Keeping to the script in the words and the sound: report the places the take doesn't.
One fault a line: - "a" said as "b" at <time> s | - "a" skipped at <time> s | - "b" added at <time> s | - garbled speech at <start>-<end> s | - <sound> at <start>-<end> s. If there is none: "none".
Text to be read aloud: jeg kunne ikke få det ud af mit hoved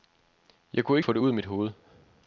- "ikke" skipped at 1.0 s